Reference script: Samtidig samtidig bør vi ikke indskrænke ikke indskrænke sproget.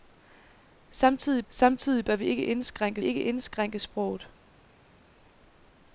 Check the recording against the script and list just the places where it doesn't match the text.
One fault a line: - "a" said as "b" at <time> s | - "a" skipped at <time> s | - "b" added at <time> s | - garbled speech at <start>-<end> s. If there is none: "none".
none